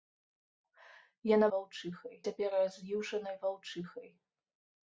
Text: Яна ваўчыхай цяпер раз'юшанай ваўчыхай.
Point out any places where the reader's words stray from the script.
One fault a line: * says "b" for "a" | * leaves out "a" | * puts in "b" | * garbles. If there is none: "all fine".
all fine